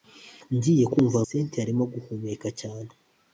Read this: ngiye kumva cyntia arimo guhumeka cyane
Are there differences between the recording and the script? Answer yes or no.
no